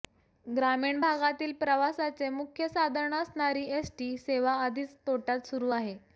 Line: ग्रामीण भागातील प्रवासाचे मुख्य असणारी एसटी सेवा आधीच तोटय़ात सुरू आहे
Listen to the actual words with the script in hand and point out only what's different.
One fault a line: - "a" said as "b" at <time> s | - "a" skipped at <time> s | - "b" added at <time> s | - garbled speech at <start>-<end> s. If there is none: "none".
- "साधन" added at 2.7 s